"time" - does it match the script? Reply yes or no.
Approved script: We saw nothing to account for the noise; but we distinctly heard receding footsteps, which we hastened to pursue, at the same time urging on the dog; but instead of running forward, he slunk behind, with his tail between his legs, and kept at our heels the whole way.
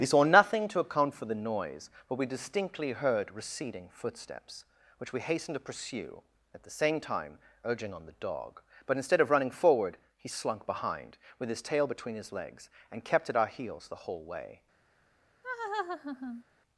yes